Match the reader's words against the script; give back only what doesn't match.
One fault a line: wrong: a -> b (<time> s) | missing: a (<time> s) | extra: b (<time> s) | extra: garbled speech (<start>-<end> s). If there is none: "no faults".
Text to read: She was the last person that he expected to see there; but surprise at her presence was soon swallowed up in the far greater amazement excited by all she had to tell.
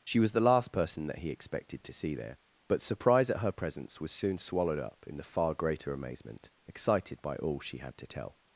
no faults